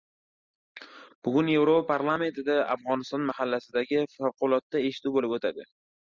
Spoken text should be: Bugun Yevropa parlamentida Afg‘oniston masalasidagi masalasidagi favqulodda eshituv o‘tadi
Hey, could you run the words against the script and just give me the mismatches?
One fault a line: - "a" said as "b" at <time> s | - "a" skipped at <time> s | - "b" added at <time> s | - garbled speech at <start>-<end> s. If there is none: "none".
- "masalasidagi" skipped at 4.0 s
- "bo‘lib" added at 5.2 s